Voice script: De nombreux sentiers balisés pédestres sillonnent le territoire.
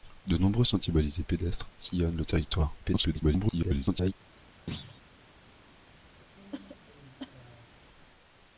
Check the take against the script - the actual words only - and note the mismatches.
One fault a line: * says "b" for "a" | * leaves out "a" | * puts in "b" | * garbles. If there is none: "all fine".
* garbles